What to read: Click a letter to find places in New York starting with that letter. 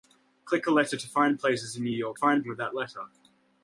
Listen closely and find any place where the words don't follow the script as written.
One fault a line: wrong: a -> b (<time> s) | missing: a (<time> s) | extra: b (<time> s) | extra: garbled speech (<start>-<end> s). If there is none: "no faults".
wrong: starting -> find (2.1 s)